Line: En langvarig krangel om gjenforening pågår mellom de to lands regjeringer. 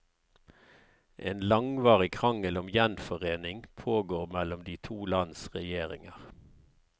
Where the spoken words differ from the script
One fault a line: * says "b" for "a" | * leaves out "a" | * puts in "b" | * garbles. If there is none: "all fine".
all fine